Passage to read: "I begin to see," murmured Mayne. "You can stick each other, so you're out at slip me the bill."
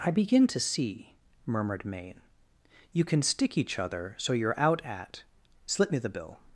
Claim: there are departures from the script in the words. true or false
false